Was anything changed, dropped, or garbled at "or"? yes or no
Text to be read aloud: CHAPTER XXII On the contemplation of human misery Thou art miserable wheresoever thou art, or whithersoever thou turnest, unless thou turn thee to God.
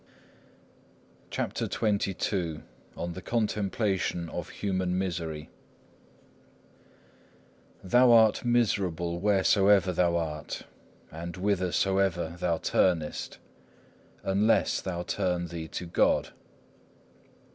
yes